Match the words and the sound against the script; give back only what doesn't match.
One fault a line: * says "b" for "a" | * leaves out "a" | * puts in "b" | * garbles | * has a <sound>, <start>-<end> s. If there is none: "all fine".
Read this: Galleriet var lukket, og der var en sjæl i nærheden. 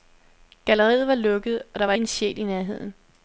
all fine